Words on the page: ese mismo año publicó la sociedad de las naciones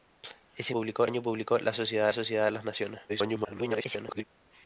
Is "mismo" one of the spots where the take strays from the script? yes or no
yes